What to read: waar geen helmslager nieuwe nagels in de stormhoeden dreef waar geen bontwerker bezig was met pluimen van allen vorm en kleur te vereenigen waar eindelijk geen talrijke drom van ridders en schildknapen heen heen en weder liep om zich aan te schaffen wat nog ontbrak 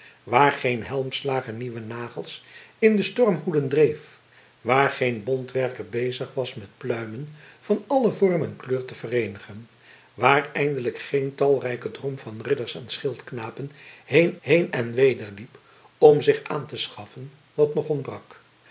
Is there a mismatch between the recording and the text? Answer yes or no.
no